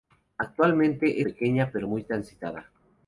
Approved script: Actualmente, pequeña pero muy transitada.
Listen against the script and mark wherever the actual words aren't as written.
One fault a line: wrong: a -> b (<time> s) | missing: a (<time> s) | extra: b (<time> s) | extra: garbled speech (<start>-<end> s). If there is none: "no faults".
no faults